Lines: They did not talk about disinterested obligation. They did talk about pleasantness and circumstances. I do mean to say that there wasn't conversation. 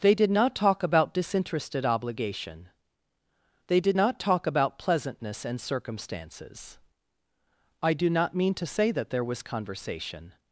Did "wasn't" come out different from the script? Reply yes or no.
yes